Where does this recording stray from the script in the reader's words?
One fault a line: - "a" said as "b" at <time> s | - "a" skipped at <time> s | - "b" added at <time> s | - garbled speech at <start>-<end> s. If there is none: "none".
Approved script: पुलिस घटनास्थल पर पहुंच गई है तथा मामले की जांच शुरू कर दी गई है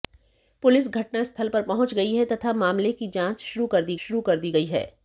- "शुरू कर दी" added at 4.0 s